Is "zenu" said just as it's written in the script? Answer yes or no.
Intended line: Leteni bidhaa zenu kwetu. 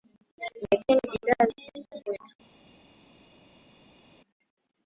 no